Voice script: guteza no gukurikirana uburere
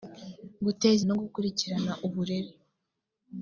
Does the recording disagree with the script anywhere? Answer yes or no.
no